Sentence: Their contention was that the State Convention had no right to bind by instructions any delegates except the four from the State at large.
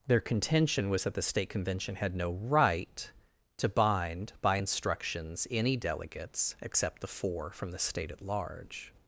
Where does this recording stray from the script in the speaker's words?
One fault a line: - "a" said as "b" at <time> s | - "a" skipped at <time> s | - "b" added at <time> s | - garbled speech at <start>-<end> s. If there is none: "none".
none